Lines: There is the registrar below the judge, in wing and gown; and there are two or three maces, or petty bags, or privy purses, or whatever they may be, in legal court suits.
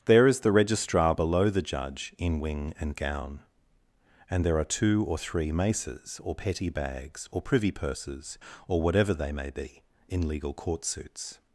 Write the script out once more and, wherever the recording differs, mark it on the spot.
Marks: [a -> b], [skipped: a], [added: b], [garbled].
There is the registrar below the judge, in wing and gown; and there are two or three maces, or petty bags, or privy purses, or whatever they may be, in legal court suits.